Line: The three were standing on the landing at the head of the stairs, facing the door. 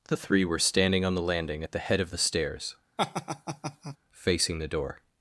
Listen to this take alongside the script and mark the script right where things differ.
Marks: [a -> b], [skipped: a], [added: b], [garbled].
The three were standing on the landing at the head of the stairs, facing the door.